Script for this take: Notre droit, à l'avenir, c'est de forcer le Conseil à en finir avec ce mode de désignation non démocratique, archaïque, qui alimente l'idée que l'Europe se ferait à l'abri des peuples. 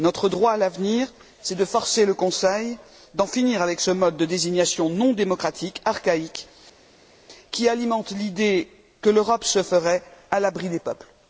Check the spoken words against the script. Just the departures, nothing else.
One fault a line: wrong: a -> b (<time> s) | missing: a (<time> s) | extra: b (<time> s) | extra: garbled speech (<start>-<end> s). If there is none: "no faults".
no faults